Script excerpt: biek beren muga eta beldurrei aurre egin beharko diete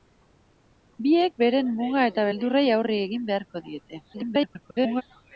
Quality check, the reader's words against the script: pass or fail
fail